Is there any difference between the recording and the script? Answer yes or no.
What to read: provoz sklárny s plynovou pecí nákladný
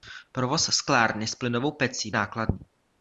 no